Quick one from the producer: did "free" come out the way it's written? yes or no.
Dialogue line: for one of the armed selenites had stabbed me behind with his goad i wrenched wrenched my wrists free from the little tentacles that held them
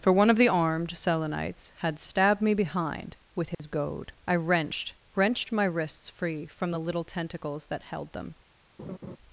yes